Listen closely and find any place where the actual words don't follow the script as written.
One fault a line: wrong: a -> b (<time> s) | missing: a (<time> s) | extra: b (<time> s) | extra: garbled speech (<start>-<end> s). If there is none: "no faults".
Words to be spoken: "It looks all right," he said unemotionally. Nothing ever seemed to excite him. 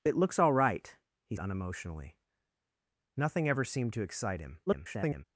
missing: said (1.4 s)
extra: garbled speech (4.7-5.2 s)